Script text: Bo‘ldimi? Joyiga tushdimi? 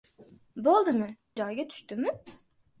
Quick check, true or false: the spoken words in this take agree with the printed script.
true